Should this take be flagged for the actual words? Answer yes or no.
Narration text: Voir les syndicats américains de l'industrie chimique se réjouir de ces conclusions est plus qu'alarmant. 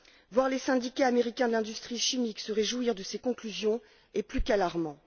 no